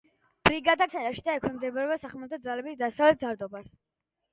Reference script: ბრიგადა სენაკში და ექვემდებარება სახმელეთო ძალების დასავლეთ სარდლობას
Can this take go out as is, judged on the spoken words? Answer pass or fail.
pass